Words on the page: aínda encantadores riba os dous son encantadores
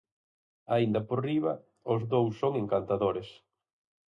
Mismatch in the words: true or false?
true